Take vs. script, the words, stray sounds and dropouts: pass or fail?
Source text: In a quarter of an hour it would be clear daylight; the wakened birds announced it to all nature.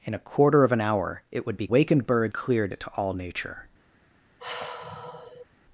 fail